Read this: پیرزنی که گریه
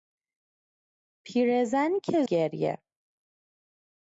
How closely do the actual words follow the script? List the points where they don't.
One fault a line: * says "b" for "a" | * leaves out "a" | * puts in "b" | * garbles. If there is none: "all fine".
all fine